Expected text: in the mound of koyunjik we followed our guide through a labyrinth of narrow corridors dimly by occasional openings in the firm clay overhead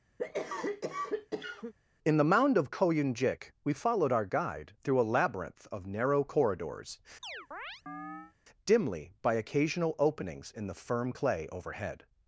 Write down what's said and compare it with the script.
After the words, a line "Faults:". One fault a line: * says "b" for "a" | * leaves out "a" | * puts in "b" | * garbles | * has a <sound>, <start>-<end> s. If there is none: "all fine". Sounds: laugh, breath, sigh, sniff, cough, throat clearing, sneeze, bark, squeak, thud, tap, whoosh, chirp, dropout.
in the mound of koyunjik we followed our guide through a labyrinth of narrow corridors dimly by occasional openings in the firm clay overhead
Faults:
* has a cough, 0.2-1.7 s
* has a chirp, 7.2-8.3 s